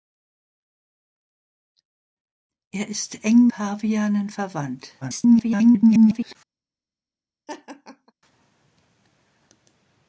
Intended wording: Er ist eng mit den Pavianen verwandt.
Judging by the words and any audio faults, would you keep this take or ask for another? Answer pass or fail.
fail